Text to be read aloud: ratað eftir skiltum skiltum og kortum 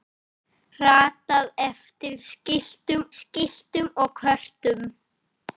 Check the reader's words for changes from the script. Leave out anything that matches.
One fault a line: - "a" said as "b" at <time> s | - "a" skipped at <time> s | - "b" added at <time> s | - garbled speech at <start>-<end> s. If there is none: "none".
none